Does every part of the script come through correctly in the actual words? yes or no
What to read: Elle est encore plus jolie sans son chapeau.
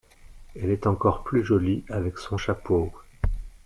no